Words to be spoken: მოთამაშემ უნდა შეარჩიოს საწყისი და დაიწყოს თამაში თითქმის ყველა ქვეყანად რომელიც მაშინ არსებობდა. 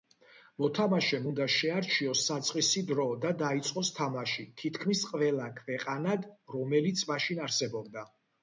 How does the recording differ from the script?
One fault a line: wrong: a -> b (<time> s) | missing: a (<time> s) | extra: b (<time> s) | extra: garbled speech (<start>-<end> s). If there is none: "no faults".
extra: დრო (2.9 s)